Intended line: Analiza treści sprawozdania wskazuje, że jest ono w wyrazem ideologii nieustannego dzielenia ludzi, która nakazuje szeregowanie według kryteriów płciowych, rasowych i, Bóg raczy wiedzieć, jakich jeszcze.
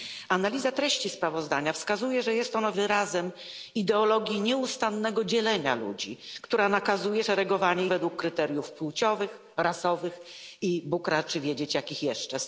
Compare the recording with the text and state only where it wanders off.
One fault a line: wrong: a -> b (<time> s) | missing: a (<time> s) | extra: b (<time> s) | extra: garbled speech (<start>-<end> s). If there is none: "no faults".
no faults